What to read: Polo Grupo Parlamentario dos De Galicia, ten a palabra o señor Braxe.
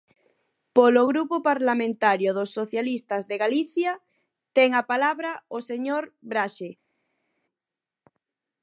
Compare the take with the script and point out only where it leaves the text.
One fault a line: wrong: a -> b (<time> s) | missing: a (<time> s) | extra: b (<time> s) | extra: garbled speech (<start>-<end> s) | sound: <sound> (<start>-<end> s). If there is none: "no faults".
extra: Socialistas (2.6 s)